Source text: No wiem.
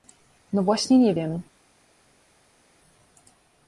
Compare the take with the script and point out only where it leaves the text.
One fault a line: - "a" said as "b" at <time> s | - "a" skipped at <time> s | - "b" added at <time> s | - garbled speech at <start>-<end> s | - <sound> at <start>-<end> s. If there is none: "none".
- "właśnie nie" added at 0.6 s